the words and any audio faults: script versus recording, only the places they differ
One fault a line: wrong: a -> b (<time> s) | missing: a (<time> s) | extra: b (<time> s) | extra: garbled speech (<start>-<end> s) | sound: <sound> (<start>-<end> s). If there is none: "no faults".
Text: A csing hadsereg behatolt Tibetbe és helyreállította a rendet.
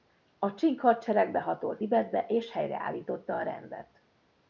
no faults